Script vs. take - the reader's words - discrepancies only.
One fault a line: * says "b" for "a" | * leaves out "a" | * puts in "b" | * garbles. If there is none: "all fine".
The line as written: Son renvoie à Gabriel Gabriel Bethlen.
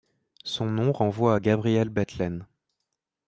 * puts in "nom"
* leaves out "Gabriel"